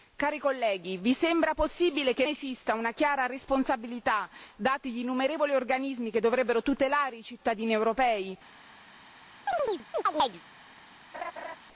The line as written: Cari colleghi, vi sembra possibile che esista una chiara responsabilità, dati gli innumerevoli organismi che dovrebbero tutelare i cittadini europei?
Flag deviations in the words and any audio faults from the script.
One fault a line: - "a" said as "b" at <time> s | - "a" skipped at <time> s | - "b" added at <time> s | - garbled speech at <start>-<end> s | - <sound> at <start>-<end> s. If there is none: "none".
- chirp at 9.5-10.4 s
- laugh at 11.1-11.6 s